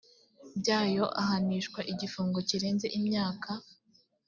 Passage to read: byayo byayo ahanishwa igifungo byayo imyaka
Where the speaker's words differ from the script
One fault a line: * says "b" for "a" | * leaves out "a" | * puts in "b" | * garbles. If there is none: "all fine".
* leaves out "byayo"
* says "kirenze" for "byayo"